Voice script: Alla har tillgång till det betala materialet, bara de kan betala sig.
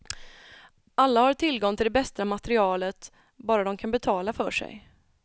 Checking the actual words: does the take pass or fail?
fail